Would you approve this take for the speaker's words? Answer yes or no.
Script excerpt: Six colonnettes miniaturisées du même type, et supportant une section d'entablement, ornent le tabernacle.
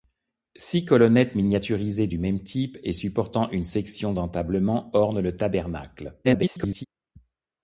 no